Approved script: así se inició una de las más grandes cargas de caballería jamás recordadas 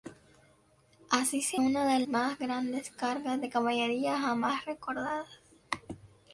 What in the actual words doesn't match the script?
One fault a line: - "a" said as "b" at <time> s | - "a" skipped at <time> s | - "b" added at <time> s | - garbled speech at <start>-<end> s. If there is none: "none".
- "inició" skipped at 1.6 s
- "las" skipped at 2.0 s